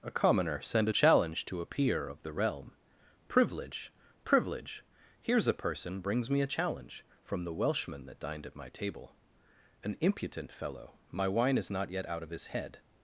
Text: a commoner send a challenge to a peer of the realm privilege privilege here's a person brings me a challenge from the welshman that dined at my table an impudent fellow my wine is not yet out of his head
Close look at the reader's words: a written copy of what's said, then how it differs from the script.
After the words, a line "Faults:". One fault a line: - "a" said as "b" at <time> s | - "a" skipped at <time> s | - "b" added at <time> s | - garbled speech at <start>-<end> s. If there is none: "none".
a commoner send a challenge to a peer of the realm privilege privilege here's a person brings me a challenge from the welshman that dined at my table an impudent fellow my wine is not yet out of his head
Faults:
none